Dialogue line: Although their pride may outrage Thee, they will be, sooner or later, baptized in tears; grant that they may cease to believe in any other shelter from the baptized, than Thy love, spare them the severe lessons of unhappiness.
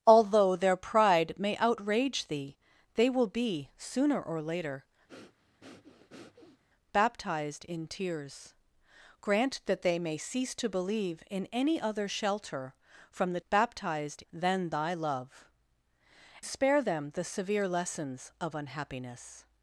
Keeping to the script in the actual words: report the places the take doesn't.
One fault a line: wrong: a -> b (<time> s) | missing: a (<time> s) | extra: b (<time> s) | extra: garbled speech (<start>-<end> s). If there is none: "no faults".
no faults